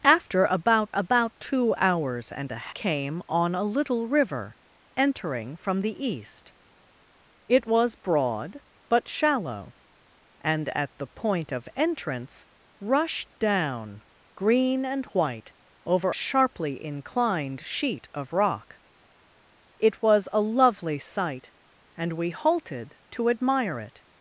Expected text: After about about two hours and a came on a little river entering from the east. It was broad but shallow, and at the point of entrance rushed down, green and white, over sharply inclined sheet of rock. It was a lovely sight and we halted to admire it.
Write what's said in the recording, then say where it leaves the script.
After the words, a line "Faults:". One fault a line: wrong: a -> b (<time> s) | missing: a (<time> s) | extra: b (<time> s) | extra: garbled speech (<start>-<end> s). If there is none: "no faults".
After about about two hours and a came on a little river entering from the east. It was broad but shallow, and at the point of entrance rushed down, green and white, over sharply inclined sheet of rock. It was a lovely sight and we halted to admire it.
Faults:
no faults